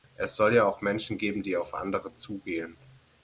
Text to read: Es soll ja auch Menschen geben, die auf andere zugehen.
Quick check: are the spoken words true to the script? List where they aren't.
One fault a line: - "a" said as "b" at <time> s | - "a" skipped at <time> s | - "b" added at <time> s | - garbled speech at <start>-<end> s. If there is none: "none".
none